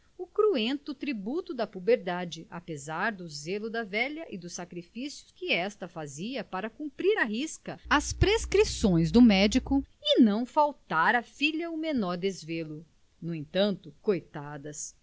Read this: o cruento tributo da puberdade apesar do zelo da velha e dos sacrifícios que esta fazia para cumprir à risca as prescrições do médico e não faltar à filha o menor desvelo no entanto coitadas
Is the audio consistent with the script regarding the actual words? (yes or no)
yes